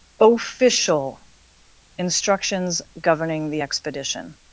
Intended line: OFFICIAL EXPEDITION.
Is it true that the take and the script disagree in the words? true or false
true